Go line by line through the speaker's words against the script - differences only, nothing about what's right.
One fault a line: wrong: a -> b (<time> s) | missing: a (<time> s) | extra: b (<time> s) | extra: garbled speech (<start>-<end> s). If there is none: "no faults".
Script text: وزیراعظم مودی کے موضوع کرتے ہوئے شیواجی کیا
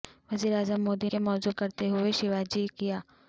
no faults